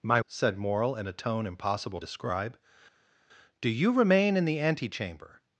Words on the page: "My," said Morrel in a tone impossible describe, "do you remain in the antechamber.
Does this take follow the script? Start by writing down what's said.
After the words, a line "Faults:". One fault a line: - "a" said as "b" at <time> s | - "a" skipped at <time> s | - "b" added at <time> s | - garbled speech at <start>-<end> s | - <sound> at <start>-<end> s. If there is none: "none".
"My," said Morrel in a tone impossible describe, "do you remain in the antechamber.
Faults:
none